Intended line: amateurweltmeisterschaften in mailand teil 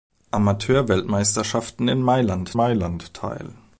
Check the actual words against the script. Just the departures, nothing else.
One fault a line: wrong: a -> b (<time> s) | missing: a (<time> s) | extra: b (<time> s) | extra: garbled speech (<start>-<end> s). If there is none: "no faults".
extra: mailand (2.5 s)